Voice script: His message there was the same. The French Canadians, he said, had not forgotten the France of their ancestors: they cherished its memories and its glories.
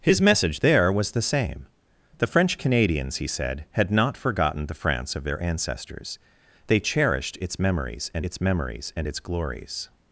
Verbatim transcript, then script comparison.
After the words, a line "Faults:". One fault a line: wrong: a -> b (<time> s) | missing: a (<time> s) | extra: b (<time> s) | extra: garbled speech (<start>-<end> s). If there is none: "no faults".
His message there was the same. The French Canadians, he said, had not forgotten the France of their ancestors: they cherished its memories and its memories and its glories.
Faults:
extra: memories and its (8.4 s)